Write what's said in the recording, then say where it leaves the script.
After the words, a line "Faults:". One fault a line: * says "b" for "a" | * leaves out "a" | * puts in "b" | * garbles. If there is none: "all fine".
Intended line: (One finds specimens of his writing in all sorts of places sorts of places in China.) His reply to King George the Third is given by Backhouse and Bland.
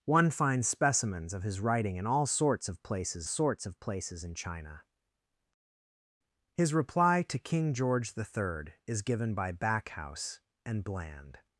(One finds specimens of his writing in all sorts of places sorts of places in China.) His reply to King George the Third is given by Backhouse and Bland.
Faults:
all fine